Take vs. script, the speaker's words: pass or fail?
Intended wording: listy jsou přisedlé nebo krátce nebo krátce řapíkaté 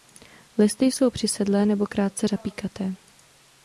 fail